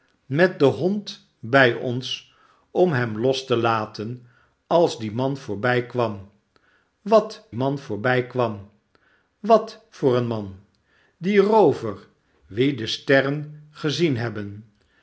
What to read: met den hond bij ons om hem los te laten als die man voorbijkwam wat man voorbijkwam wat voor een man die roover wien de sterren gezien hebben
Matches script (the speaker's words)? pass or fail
pass